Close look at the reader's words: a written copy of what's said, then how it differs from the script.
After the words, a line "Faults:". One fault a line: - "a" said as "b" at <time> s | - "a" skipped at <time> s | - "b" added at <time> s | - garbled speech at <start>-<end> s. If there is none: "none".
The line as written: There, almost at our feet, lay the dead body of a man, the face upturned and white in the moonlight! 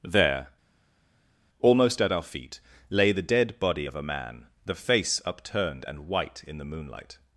There, almost at our feet, lay the dead body of a man, the face upturned and white in the moonlight!
Faults:
none